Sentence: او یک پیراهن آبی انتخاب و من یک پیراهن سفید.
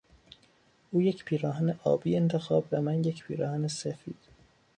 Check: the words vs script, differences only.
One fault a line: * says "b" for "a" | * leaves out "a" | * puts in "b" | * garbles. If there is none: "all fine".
all fine